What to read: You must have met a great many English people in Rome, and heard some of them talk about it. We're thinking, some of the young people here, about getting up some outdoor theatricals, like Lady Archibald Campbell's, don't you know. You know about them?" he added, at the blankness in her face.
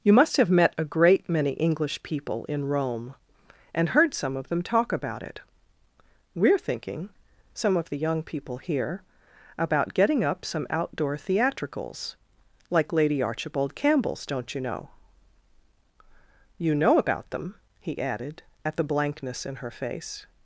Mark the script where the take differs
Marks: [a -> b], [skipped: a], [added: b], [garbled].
You must have met a great many English people in Rome, and heard some of them talk about it. We're thinking, some of the young people here, about getting up some outdoor theatricals, like Lady Archibald Campbell's, don't you know. You know about them?" he added, at the blankness in her face.